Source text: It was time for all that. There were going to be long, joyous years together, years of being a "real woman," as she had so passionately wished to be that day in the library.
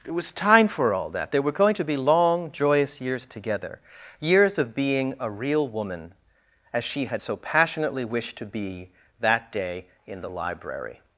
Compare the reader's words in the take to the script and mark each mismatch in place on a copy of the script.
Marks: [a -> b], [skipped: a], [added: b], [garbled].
It was time for all that. There were going to be long, joyous years together, years of being a "real woman," as she had so passionately wished to be that day in the library.